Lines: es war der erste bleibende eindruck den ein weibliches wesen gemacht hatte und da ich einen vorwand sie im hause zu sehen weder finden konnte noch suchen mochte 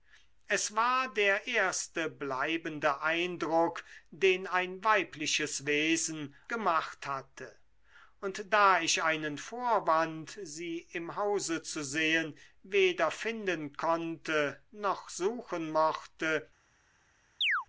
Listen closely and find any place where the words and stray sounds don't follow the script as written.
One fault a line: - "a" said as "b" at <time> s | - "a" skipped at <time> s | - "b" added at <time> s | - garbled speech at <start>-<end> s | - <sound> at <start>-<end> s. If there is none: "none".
- chirp at 17.4-17.7 s